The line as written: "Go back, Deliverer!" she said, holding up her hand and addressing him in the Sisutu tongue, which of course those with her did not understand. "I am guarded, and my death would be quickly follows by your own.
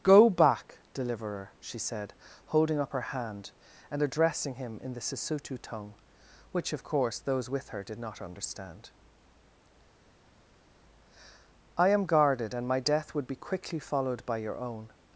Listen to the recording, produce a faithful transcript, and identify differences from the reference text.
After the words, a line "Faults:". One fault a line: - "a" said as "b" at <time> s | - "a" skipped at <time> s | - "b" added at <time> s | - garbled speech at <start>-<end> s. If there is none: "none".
"Go back, Deliverer!" she said, holding up her hand and addressing him in the Sisutu tongue, which of course those with her did not understand. "I am guarded, and my death would be quickly followed by your own.
Faults:
- "follows" said as "followed" at 13.8 s